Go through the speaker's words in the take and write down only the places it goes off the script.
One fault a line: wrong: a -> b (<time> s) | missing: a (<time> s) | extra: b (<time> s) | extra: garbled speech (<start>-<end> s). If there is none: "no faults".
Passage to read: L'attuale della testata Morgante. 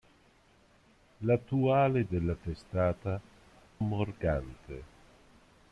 no faults